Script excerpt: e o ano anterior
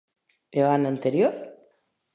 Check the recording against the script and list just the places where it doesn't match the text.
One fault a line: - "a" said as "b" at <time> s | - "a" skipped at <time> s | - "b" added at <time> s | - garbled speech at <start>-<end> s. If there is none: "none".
none